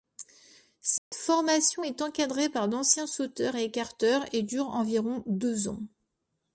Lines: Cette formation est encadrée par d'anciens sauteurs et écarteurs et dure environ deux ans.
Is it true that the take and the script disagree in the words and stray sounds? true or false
true